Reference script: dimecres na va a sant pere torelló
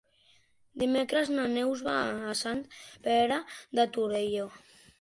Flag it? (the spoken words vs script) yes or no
yes